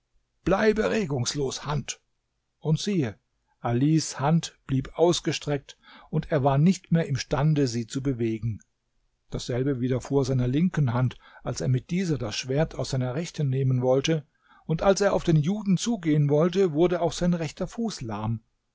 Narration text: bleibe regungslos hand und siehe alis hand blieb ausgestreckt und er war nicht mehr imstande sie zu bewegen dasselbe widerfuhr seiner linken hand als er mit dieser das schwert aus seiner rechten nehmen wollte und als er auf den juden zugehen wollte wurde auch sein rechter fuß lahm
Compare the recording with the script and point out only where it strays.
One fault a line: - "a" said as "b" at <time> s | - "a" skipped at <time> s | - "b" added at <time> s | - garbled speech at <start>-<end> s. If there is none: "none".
none